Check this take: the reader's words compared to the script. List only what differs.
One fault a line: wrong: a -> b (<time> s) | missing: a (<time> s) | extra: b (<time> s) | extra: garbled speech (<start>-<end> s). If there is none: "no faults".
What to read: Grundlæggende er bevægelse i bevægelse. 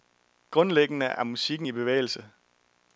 wrong: bevægelse -> musikken (1.2 s)